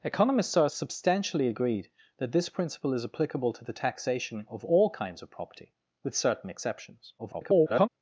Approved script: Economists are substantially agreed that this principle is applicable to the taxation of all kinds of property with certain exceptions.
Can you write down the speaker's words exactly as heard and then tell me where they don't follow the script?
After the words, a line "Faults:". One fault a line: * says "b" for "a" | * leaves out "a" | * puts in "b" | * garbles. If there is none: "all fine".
Economists are substantially agreed that this principle is applicable to the taxation of all kinds of property with certain exceptions. [garbled]
Faults:
* garbles